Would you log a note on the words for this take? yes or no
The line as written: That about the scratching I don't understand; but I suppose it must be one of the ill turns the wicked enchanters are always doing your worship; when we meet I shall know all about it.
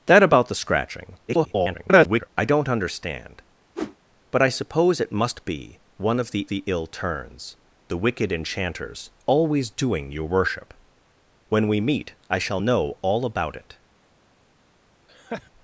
yes